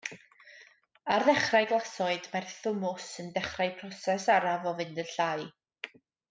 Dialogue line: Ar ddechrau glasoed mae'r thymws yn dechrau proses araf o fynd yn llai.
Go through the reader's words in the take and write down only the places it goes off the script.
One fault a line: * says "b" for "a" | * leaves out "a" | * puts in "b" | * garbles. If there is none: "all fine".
all fine